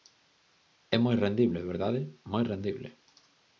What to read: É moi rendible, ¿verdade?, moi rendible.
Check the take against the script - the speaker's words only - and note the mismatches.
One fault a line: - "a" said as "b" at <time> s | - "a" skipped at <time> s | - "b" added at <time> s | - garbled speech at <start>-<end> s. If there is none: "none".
none